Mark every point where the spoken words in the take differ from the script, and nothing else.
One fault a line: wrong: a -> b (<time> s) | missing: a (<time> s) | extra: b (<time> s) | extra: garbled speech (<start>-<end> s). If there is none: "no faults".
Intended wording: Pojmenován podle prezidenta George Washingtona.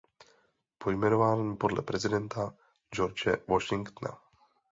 no faults